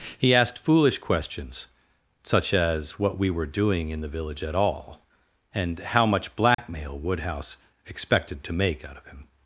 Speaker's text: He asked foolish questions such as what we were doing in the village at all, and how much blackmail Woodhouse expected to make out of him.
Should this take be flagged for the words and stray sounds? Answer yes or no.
yes